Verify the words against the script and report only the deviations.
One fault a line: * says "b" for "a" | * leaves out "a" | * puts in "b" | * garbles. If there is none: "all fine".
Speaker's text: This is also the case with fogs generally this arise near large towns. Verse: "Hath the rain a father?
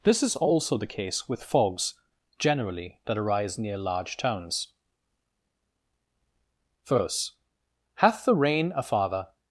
* says "that" for "this"